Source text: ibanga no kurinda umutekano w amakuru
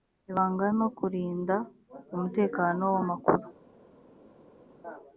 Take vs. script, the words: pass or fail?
pass